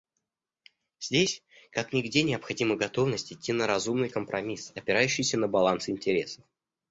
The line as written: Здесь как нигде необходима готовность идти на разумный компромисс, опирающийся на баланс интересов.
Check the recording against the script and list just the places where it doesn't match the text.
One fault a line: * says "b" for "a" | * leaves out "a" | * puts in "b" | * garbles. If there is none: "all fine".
all fine